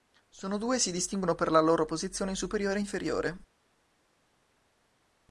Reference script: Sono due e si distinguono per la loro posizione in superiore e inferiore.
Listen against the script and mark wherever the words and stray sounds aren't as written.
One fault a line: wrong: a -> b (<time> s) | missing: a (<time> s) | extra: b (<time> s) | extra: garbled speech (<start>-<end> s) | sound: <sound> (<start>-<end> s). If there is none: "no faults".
no faults